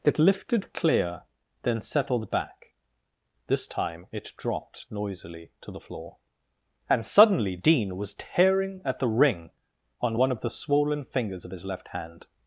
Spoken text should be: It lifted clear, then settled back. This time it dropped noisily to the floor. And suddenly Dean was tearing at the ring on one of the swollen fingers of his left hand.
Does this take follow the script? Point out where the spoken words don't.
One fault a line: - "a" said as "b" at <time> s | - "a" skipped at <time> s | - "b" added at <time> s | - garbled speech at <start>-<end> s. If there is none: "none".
none